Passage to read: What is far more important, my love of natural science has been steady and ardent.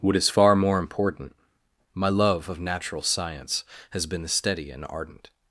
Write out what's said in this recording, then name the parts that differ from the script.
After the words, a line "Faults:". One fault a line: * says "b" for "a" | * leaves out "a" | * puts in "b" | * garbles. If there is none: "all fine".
What is far more important, my love of natural science has been steady and ardent.
Faults:
all fine